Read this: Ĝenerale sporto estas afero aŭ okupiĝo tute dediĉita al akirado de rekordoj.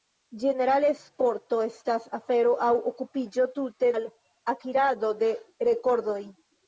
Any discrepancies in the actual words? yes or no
yes